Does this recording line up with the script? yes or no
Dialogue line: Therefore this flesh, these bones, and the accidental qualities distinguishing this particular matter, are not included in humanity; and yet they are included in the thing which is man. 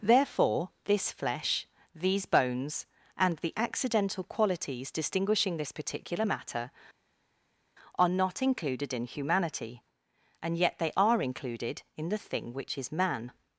yes